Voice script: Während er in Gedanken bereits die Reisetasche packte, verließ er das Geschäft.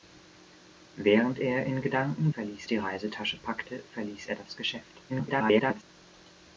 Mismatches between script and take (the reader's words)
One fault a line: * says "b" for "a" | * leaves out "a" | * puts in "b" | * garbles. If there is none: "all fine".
* says "verließ" for "bereits"
* garbles